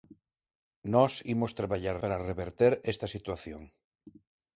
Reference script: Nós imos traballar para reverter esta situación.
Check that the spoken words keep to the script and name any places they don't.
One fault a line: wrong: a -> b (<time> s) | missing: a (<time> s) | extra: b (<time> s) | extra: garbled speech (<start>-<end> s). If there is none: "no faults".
no faults